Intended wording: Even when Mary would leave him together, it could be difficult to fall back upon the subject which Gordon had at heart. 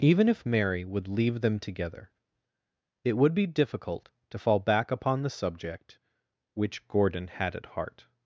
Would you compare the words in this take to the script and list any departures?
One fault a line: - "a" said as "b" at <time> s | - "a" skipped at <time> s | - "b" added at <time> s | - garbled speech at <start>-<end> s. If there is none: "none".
- "when" said as "if" at 0.3 s
- "him" said as "them" at 1.4 s
- "could" said as "would" at 3.1 s